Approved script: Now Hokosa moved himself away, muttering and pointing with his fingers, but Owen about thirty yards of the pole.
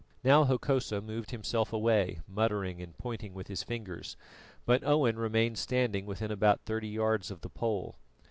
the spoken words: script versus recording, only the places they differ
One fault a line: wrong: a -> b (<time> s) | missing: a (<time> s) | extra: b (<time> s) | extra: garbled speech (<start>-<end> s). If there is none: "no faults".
extra: remained standing within (5.2 s)